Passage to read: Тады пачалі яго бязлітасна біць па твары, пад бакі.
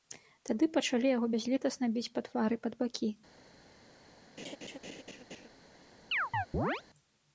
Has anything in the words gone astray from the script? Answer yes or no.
no